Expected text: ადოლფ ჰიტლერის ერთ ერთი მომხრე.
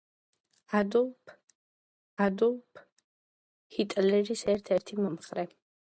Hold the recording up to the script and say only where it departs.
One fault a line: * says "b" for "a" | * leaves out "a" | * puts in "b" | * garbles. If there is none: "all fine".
* puts in "ადოლფ"